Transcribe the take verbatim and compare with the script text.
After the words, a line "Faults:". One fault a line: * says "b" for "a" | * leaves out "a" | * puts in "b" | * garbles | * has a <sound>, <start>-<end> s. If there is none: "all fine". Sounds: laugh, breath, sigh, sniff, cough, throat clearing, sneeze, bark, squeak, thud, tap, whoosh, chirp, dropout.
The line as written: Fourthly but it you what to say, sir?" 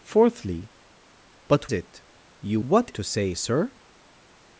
Fourthly but it you what to say, sir?"
Faults:
all fine